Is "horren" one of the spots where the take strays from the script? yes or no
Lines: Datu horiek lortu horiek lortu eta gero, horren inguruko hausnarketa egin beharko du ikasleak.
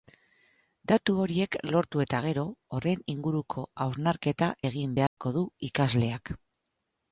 no